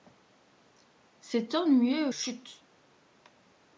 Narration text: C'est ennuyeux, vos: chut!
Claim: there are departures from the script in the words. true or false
true